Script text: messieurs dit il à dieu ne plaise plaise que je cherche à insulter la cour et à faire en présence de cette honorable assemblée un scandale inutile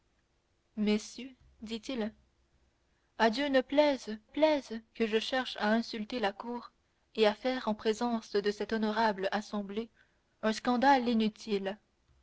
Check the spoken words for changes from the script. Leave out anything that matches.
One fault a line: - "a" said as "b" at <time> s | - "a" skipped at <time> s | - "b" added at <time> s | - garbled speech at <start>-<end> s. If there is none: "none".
none